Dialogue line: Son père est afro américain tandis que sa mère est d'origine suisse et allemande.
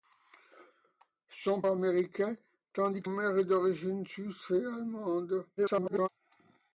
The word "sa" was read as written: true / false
false